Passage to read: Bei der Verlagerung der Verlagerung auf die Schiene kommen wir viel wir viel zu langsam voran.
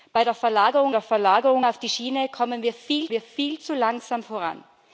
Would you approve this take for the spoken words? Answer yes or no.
yes